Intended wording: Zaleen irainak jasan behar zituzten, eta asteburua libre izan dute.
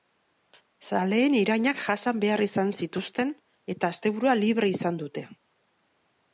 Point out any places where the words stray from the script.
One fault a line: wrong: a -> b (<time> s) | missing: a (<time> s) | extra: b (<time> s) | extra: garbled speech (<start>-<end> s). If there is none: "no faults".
extra: izan (2.5 s)